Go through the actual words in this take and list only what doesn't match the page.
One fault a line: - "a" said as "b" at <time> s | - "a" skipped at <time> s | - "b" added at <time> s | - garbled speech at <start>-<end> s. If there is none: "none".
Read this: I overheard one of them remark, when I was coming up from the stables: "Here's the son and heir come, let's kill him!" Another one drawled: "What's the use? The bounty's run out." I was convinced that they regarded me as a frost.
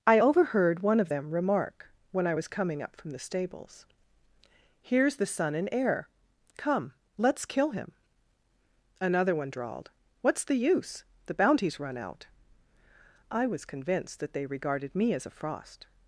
none